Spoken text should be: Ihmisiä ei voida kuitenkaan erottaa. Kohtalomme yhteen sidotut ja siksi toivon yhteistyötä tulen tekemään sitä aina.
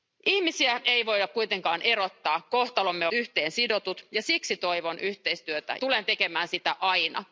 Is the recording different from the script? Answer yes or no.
no